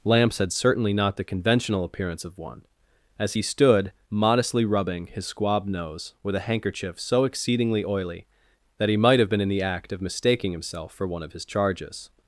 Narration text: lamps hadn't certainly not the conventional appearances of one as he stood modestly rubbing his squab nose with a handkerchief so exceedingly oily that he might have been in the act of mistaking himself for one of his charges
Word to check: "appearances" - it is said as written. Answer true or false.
false